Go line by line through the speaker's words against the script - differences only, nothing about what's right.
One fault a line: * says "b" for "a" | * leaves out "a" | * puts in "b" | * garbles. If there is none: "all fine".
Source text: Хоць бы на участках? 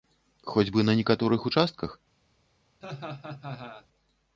* puts in "некаторых"